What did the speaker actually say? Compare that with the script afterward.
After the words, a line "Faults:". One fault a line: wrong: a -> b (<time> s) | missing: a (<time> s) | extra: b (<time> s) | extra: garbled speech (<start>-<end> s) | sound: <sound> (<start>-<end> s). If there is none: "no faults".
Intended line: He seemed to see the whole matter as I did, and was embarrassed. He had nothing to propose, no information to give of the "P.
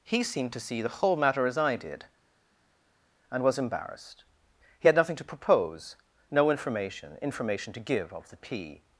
He seemed to see the whole matter as I did, and was embarrassed. He had nothing to propose, no information information to give of the "P.
Faults:
extra: information (7.2 s)